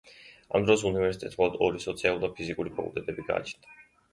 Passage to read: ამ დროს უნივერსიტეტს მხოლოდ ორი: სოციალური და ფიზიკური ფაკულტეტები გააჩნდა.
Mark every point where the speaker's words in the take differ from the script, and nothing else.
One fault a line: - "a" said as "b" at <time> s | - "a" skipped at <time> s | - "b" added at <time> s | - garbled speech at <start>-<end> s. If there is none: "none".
none